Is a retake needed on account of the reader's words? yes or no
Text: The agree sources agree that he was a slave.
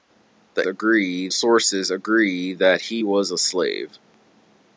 no